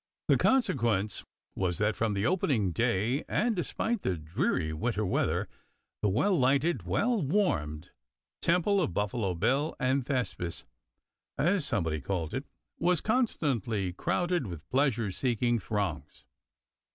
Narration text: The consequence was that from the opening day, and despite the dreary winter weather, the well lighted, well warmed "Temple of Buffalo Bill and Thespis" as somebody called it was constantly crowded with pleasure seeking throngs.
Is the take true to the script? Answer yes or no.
yes